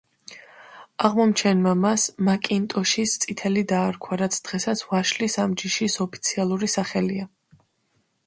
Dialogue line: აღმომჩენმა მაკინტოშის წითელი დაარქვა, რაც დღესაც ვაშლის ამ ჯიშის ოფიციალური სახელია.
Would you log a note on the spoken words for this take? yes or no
yes